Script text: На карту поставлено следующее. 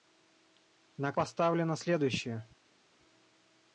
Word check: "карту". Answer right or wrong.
wrong